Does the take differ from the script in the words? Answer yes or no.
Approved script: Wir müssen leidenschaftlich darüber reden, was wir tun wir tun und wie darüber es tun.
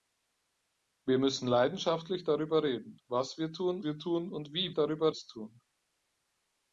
no